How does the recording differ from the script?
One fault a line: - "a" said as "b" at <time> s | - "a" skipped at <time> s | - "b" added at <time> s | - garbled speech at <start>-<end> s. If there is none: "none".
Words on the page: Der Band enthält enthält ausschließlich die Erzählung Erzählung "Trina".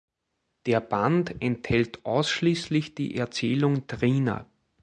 - "enthält" skipped at 2.0 s
- "Erzählung" skipped at 3.9 s